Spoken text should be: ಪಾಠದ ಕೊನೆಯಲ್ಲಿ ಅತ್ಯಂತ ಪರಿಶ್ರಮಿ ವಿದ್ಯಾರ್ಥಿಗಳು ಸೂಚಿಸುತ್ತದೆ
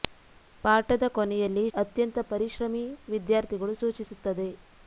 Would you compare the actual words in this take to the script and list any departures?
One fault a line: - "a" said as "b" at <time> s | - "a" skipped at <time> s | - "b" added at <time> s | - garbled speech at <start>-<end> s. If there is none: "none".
none